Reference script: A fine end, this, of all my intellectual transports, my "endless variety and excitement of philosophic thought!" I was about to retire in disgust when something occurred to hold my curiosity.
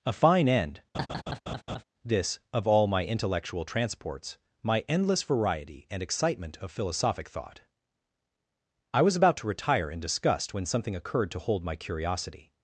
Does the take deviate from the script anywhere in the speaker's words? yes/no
no